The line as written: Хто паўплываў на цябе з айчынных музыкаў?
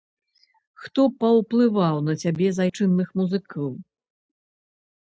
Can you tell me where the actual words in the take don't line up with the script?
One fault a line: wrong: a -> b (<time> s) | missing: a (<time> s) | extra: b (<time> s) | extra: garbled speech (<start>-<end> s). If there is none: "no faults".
no faults